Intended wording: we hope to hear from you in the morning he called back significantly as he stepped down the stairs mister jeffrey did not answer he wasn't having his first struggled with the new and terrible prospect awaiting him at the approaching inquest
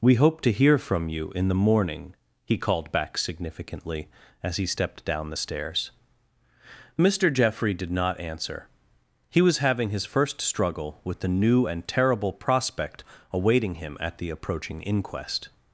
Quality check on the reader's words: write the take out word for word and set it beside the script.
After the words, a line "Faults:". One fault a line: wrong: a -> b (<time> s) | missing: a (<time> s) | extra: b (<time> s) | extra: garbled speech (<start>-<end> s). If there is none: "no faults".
we hope to hear from you in the morning he called back significantly as he stepped down the stairs mister jeffrey did not answer he was having his first struggle with the new and terrible prospect awaiting him at the approaching inquest
Faults:
wrong: wasn't -> was (9.4 s)
wrong: struggled -> struggle (10.4 s)